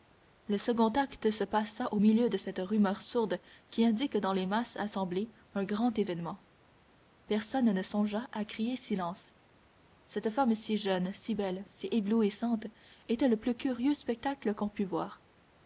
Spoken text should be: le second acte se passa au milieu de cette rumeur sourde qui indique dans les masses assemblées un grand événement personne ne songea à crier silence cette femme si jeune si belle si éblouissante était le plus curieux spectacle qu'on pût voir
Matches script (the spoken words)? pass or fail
pass